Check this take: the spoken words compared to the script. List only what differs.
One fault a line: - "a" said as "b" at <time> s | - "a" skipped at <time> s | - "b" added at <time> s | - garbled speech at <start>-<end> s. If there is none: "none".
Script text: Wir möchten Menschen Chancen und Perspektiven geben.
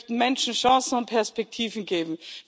none